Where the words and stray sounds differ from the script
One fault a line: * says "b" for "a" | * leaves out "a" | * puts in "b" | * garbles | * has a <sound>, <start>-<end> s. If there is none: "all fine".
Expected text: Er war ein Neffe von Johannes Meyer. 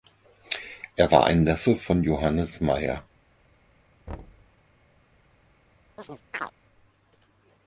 * has a thud, 4.1-4.6 s
* has a chirp, 6.0-6.5 s